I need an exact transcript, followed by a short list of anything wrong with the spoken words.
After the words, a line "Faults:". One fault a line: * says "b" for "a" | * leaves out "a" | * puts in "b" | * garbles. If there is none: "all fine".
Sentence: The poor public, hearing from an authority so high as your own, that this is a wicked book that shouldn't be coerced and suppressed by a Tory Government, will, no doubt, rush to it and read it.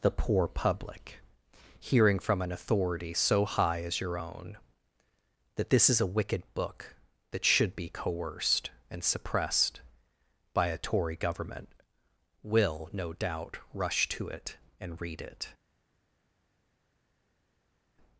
The poor public, hearing from an authority so high as your own, that this is a wicked book that should be coerced and suppressed by a Tory Government, will, no doubt, rush to it and read it.
Faults:
* says "should" for "shouldn't"